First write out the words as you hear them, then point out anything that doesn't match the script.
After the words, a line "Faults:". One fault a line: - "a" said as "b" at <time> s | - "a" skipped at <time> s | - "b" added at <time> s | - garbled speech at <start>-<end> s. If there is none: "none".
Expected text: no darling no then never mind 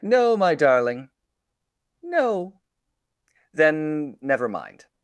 no my darling no then never mind
Faults:
- "my" added at 0.3 s